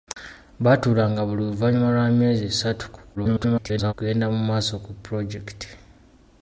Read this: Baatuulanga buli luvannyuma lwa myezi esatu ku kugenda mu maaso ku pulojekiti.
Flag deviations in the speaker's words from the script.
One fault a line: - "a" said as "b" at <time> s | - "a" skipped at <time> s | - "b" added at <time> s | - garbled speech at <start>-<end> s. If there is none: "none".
- garbled speech at 3.2-3.9 s